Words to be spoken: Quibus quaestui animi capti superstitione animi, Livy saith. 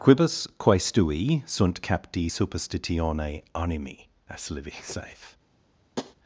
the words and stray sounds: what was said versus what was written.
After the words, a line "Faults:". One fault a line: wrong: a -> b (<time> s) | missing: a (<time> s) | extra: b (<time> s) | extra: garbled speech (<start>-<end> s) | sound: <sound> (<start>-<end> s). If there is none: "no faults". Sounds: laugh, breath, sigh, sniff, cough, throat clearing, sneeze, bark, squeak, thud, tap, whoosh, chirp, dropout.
Quibus quaestui sunt capti superstitione animi, as Livy saith.
Faults:
wrong: animi -> sunt (1.4 s)
extra: as (4.3 s)
sound: tap (6.0-6.2 s)